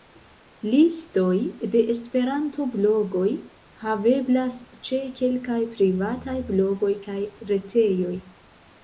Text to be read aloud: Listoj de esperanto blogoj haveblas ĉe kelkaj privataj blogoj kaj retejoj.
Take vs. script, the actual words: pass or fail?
pass